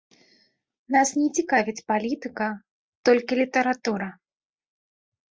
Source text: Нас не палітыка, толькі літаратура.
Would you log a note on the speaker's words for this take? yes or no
yes